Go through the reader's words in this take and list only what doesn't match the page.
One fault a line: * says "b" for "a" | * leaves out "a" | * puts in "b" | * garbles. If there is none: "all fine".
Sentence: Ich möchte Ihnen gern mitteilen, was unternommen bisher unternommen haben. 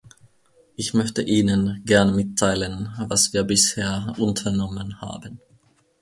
* says "wir" for "unternommen"